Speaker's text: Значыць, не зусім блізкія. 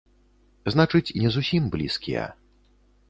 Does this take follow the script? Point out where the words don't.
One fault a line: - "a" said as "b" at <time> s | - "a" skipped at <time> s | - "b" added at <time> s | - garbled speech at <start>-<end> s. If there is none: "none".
none